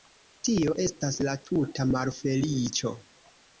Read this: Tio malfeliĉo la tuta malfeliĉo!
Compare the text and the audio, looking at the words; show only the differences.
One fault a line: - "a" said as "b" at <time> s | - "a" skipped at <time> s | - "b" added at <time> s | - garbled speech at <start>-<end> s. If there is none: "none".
- "malfeliĉo" said as "estas" at 0.8 s